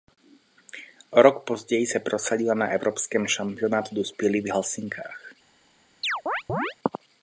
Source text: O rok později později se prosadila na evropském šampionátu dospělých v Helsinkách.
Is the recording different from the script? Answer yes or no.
yes